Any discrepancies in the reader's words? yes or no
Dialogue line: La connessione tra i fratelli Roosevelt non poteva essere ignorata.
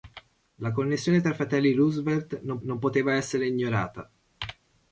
yes